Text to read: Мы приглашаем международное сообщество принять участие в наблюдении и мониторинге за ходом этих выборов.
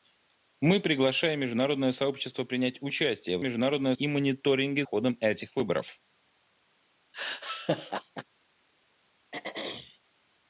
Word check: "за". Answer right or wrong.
wrong